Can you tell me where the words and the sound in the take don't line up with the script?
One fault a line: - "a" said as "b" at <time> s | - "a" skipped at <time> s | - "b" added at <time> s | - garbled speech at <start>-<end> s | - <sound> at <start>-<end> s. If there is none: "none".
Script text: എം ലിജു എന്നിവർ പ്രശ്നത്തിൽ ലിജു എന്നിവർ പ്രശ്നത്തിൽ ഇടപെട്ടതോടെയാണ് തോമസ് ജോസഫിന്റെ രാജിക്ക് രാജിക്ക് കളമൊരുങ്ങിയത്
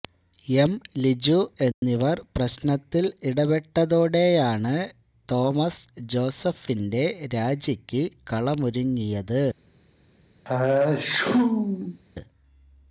- dropout at 1.7-1.8 s
- "ലിജു എന്നിവർ പ്രശ്നത്തിൽ" skipped at 3.1 s
- "രാജിക്ക്" skipped at 8.0 s
- sneeze at 10.4-12.0 s